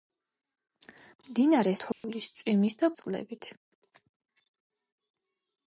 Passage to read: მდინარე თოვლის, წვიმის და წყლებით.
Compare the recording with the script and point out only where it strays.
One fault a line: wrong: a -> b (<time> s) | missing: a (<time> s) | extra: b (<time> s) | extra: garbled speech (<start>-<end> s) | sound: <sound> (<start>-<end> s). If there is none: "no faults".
sound: dropout (1.9-2.0 s)